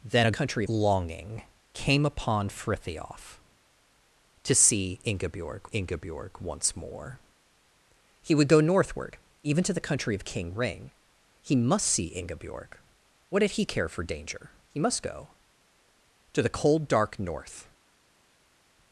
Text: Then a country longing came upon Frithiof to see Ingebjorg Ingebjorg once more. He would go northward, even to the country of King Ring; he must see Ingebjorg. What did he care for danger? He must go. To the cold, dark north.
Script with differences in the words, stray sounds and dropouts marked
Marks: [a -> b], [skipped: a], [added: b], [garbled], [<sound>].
Then a country longing came upon Frithiof to see Ingebjorg Ingebjorg once more. He would go northward, even to the country of King Ring; he must see Ingebjorg. What did he care for danger? He must go. To the cold, dark north.